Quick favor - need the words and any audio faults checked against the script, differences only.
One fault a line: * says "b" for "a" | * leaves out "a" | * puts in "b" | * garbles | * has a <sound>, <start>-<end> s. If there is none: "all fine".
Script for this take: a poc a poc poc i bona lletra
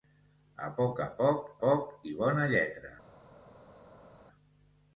all fine